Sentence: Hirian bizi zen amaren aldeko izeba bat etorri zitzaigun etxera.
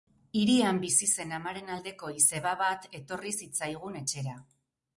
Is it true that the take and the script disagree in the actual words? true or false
false